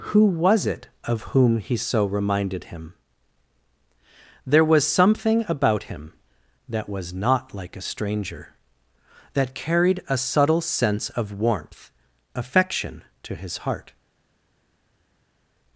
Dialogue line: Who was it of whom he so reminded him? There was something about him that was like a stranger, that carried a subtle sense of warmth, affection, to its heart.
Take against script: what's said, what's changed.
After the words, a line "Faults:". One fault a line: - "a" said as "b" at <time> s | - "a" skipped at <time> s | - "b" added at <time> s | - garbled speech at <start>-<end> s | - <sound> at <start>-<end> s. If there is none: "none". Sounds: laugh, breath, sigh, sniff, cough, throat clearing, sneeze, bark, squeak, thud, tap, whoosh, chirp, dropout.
Who was it of whom he so reminded him? There was something about him that was not like a stranger, that carried a subtle sense of warmth, affection, to his heart.
Faults:
- "not" added at 7.1 s
- "its" said as "his" at 13.4 s